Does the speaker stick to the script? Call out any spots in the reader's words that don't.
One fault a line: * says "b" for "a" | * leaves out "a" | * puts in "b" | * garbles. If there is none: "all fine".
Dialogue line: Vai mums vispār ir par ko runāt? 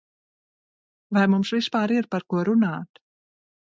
all fine